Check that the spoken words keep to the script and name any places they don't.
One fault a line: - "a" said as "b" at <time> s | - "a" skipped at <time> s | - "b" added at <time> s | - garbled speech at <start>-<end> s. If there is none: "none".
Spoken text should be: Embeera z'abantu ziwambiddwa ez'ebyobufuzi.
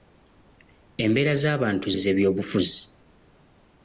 - "ziwambiddwa" skipped at 1.9 s